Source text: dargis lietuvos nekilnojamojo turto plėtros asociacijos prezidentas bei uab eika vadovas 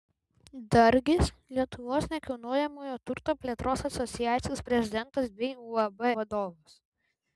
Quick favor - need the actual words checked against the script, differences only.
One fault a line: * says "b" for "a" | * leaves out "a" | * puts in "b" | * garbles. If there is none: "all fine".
* leaves out "eika"